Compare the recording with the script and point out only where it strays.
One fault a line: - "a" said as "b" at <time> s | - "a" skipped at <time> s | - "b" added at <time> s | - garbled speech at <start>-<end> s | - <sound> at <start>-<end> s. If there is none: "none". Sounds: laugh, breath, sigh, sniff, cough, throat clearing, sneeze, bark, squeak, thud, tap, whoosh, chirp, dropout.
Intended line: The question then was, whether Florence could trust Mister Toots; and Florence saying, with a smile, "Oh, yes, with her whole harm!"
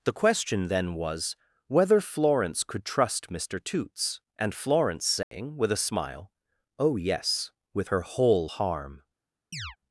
- dropout at 5.2-5.3 s
- chirp at 9.5-9.8 s